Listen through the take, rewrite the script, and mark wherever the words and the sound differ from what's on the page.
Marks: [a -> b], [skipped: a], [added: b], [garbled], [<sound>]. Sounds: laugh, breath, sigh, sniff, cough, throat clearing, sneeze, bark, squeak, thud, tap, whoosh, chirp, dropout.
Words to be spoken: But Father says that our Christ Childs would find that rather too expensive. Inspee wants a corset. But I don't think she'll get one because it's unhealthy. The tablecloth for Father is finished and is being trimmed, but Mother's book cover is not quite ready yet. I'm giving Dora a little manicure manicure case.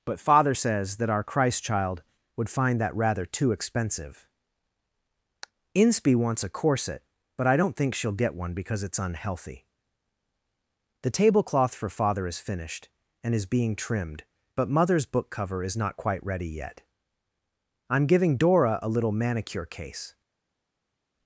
But Father says that our Christ [Childs -> Child] would find that rather too expensive. Inspee wants a corset. But I don't think she'll get one because it's unhealthy. The tablecloth for Father is finished and is being trimmed, but Mother's book cover is not quite ready yet. I'm giving Dora a little manicure [skipped: manicure] case.